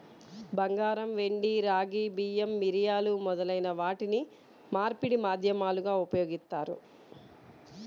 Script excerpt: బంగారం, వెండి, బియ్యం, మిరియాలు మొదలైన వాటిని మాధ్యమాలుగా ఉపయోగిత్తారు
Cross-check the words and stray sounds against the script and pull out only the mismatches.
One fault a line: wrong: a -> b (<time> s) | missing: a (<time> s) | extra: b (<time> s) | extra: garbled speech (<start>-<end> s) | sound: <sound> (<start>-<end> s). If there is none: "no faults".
extra: రాగి (1.6 s)
extra: మార్పిడి (4.7 s)